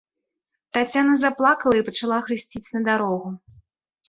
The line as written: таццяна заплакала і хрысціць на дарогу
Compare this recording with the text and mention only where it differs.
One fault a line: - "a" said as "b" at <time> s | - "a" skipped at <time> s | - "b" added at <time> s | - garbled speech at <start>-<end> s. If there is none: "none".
- "пачала" added at 1.9 s